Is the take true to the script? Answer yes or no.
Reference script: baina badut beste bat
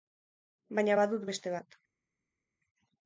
yes